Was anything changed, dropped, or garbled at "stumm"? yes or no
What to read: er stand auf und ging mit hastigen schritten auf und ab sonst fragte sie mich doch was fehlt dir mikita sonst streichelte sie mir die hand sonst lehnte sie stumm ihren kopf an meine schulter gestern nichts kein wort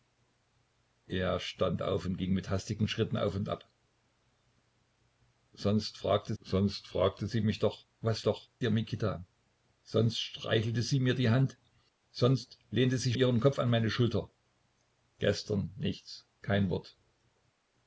yes